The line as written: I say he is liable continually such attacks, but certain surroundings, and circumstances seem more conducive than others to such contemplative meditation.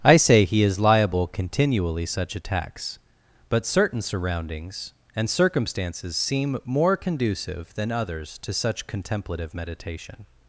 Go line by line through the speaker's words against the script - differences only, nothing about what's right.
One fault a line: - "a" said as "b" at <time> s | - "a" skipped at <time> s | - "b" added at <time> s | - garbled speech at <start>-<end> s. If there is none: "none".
none